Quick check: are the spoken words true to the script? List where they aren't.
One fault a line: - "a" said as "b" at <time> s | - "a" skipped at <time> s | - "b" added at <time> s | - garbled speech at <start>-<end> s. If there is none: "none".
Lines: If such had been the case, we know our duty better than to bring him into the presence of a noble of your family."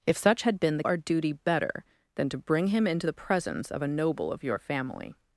- "case we know" skipped at 0.8 s